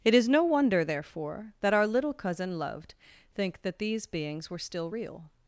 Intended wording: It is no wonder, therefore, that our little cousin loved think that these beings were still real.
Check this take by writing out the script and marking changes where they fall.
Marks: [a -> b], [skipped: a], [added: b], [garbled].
It is no wonder, therefore, that our little cousin loved think that these beings were still real.